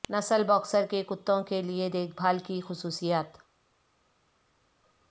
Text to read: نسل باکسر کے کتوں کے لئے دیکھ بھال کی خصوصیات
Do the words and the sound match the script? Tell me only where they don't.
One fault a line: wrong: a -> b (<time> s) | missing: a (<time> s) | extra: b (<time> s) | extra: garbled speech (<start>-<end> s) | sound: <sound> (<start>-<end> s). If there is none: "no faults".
no faults